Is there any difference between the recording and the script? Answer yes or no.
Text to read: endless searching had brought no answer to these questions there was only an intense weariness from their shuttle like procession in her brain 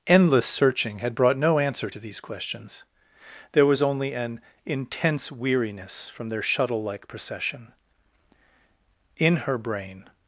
no